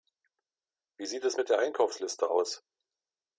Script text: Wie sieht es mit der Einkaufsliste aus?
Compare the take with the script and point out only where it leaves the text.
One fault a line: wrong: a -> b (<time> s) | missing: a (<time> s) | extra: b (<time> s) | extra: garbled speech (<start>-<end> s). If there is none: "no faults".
no faults